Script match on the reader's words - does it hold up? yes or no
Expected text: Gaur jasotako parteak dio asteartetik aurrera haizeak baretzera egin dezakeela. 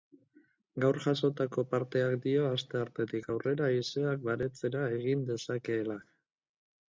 yes